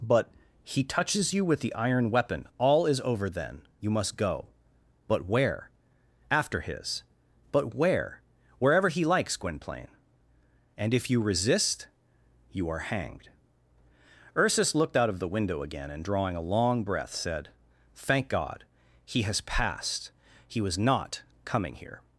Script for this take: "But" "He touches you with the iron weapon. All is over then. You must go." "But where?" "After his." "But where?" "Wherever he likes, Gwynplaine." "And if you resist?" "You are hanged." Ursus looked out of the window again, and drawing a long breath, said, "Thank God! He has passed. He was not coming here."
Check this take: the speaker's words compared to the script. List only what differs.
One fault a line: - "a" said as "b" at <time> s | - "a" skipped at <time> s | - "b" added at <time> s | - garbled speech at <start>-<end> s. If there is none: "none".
none